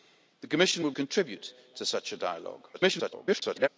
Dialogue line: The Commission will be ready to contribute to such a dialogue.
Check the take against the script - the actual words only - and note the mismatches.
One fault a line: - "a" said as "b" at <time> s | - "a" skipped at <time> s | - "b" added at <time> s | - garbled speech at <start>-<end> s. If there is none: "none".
- "be ready to" skipped at 0.9 s
- garbled speech at 2.7-3.7 s